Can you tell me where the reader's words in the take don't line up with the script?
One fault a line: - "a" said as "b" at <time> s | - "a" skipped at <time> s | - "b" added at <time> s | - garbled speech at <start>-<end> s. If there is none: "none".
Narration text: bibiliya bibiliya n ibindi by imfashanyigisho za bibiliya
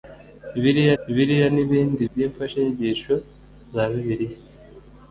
none